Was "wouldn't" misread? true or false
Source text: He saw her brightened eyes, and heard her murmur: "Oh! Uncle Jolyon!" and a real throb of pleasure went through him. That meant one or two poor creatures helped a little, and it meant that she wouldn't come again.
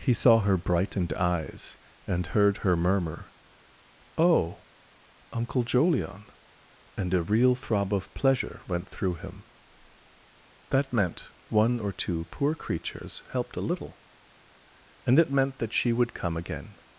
true